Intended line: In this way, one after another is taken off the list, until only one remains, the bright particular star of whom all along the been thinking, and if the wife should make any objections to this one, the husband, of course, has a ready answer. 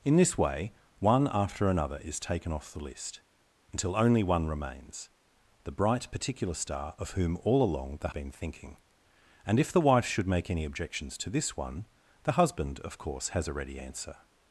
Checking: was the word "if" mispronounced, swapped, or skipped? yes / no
no